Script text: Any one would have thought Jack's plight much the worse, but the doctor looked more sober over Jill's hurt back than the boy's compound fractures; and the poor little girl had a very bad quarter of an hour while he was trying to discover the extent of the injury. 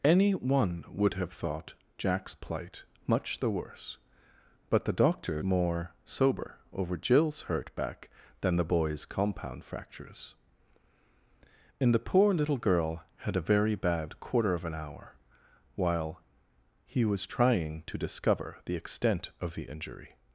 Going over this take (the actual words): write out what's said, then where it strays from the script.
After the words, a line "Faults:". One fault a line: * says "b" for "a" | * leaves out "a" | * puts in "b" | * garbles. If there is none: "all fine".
Any one would have thought Jack's plight much the worse, but the doctor more sober over Jill's hurt back than the boy's compound fractures; and the poor little girl had a very bad quarter of an hour while he was trying to discover the extent of the injury.
Faults:
* leaves out "looked"